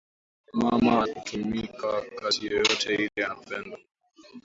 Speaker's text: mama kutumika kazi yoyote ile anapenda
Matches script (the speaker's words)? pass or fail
pass